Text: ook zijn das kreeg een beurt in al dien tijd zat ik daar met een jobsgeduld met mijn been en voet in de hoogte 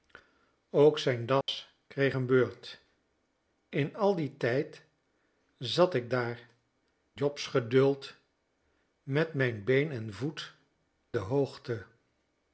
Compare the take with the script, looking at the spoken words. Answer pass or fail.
fail